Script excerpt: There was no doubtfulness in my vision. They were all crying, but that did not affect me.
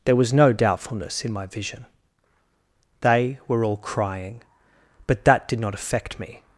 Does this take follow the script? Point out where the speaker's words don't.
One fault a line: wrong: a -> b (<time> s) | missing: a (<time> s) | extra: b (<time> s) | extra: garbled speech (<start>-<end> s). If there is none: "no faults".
no faults